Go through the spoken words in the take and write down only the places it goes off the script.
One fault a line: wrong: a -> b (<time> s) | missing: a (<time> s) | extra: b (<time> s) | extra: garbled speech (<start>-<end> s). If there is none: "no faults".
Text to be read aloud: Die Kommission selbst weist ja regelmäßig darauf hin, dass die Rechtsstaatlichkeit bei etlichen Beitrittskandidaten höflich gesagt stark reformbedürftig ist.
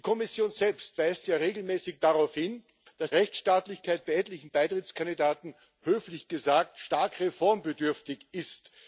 missing: die (3.1 s)